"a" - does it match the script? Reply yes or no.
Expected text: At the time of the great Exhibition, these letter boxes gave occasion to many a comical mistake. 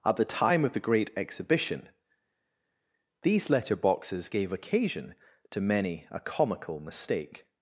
yes